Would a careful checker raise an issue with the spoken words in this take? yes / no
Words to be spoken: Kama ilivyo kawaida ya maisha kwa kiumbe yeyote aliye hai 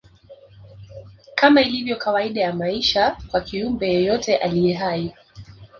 no